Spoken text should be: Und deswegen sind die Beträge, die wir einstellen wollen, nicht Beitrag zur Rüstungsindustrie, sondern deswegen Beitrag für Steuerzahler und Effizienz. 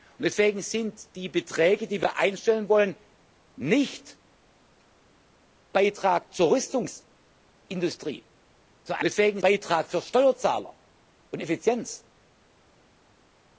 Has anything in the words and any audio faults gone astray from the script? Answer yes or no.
no